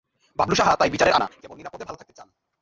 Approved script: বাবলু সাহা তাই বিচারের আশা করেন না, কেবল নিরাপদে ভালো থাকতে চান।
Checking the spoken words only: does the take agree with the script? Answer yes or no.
no